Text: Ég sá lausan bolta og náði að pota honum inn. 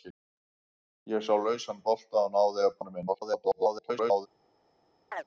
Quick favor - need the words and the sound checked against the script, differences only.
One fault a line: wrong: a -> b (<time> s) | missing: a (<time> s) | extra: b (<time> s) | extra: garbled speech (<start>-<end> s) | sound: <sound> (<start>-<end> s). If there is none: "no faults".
missing: pota (2.8 s)
extra: garbled speech (3.1-4.3 s)
sound: chirp (5.1-5.2 s)